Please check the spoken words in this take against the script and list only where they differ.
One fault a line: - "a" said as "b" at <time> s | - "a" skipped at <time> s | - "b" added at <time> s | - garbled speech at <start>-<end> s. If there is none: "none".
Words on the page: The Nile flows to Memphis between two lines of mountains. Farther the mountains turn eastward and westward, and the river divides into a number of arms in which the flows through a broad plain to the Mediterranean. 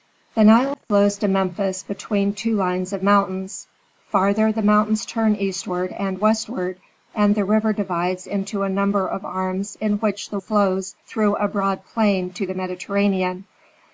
none